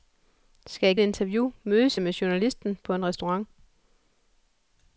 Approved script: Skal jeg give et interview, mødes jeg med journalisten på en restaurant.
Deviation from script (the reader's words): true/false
true